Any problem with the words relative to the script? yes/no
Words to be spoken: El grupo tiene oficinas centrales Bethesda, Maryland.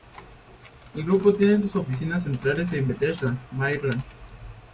yes